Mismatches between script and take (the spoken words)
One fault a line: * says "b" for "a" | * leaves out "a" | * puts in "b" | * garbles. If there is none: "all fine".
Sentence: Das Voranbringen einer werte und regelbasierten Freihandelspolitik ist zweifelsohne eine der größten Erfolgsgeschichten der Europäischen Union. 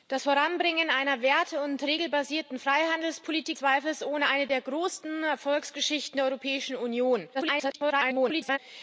* leaves out "ist"
* garbles